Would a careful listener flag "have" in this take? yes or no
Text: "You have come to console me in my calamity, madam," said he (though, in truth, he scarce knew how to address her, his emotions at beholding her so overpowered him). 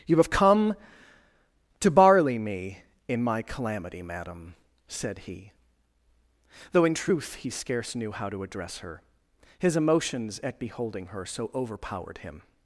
no